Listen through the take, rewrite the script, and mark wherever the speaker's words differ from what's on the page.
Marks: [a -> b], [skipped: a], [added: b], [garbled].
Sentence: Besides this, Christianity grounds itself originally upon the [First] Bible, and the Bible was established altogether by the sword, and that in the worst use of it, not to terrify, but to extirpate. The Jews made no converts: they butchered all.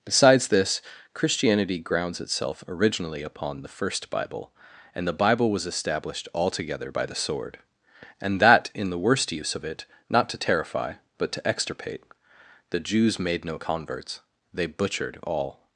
Besides this, Christianity grounds itself originally upon the [First] Bible, and the Bible was established altogether by the sword, and that in the worst use of it, not to terrify, but to extirpate. The Jews made no converts: they butchered all.